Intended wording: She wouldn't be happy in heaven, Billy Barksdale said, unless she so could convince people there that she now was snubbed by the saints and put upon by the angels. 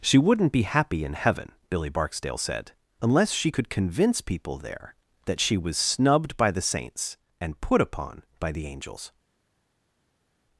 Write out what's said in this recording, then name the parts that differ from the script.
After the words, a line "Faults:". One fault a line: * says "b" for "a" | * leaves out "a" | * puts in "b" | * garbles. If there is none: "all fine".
She wouldn't be happy in heaven, Billy Barksdale said, unless she could convince people there that she was snubbed by the saints and put upon by the angels.
Faults:
* leaves out "so"
* leaves out "now"